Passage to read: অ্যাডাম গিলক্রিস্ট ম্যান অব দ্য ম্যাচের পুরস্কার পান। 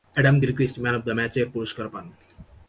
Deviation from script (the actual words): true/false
false